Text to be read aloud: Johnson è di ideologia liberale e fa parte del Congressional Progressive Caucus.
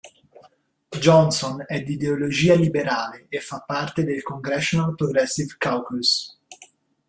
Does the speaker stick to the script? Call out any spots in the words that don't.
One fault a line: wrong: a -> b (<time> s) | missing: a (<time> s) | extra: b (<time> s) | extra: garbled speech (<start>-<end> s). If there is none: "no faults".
no faults